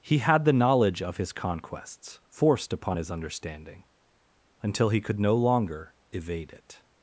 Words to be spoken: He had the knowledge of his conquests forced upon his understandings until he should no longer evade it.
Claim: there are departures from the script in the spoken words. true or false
true